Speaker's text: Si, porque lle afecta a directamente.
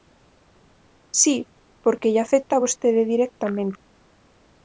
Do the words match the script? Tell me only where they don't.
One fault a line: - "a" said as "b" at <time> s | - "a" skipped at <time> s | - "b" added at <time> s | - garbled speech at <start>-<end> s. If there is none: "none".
- "vostede" added at 2.6 s